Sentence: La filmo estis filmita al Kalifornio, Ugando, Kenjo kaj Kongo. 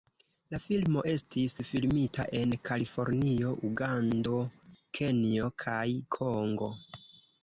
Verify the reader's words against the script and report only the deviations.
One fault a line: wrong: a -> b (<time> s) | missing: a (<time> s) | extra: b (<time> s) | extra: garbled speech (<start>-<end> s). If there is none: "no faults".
wrong: al -> en (2.4 s)